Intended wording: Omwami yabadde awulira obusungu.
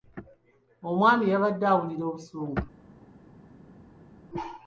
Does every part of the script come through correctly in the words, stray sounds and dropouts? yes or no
yes